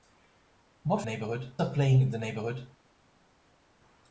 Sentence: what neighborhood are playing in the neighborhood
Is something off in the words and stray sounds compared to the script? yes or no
no